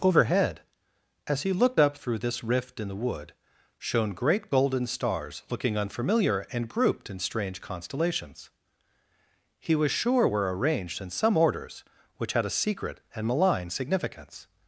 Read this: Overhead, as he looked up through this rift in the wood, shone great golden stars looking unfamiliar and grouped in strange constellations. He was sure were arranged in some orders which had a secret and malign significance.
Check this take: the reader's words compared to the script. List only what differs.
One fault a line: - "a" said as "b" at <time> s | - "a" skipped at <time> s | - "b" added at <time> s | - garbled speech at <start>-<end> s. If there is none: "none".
none